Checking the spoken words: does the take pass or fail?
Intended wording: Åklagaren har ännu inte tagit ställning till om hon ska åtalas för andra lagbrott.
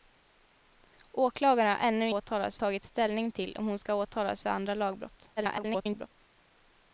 fail